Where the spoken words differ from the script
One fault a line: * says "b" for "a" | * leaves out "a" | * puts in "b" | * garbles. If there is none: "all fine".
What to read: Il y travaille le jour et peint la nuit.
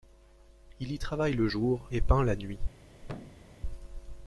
all fine